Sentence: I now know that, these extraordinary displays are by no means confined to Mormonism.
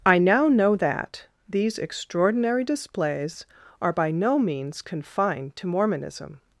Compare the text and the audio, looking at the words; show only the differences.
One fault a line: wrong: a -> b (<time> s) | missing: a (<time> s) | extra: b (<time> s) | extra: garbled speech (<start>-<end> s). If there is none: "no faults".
no faults